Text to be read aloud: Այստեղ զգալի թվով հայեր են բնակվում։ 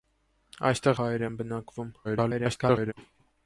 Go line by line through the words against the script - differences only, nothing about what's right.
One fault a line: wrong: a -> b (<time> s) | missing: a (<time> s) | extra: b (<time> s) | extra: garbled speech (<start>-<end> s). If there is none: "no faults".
missing: զգալի թվով (1.0 s)
extra: garbled speech (2.0-2.9 s)